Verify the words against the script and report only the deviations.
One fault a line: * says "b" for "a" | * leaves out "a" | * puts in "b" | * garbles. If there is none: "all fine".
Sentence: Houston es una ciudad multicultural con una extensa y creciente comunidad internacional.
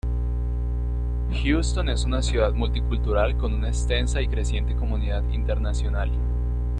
all fine